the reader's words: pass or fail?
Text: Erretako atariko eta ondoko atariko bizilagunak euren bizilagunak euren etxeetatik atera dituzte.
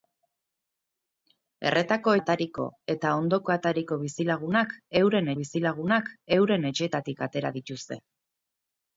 pass